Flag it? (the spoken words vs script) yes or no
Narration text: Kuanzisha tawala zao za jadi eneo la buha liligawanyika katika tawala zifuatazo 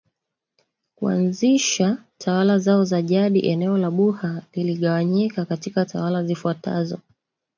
no